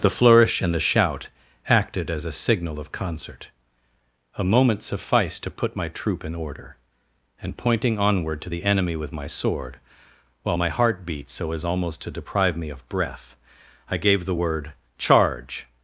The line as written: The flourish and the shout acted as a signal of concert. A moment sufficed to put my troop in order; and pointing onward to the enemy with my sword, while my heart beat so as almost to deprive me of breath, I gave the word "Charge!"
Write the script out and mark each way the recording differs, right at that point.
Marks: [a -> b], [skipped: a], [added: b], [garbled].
The flourish and the shout acted as a signal of concert. A moment sufficed to put my troop in order; and pointing onward to the enemy with my sword, while my heart beat so as almost to deprive me of breath, I gave the word "Charge!"